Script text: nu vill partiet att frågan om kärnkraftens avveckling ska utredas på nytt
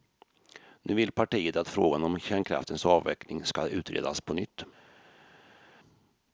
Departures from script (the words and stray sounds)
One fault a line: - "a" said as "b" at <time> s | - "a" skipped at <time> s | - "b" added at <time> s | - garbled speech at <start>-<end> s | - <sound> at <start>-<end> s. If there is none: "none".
none